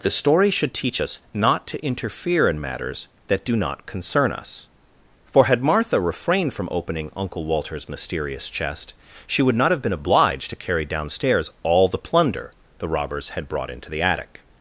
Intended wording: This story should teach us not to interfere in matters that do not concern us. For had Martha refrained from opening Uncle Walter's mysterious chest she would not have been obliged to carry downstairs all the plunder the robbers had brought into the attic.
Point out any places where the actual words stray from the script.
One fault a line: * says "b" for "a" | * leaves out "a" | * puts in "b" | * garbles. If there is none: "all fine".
* says "The" for "This"